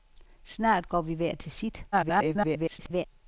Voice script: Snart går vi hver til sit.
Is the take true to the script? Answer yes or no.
no